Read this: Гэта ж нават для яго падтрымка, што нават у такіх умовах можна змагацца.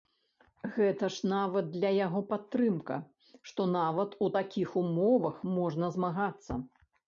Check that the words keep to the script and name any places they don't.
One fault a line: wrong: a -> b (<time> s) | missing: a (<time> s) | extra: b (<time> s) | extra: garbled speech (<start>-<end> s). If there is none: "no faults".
no faults